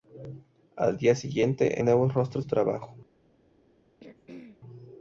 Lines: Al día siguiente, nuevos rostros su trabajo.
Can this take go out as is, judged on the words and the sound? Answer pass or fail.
fail